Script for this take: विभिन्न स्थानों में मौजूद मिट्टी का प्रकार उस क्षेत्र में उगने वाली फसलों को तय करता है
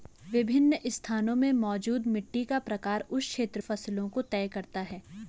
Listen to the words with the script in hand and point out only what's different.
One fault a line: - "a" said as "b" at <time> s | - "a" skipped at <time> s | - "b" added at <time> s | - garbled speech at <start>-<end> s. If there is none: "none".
- "में उगने वाली" skipped at 3.6 s